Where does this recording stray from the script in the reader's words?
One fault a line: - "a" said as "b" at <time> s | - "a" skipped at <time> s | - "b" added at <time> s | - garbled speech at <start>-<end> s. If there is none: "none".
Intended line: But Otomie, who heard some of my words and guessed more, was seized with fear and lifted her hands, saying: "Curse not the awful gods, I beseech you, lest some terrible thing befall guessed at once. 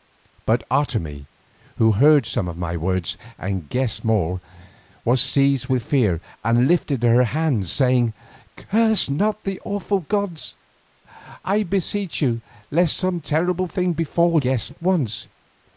none